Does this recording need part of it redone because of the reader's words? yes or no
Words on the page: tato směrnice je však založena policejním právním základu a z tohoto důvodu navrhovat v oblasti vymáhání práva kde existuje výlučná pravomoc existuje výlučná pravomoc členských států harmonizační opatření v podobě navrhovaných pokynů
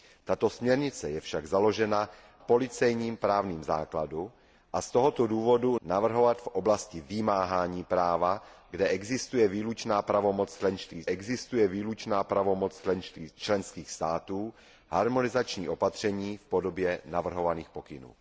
no